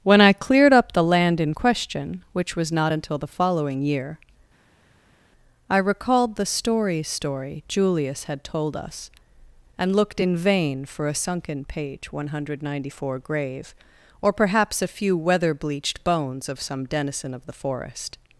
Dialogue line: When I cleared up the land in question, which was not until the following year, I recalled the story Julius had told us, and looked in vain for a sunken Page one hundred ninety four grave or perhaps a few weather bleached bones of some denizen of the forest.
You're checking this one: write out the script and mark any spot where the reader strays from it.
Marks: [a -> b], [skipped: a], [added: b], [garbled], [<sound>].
When I cleared up the land in question, which was not until the following year, I recalled the story [added: story] Julius had told us, and looked in vain for a sunken Page one hundred ninety four grave or perhaps a few weather bleached bones of some denizen of the forest.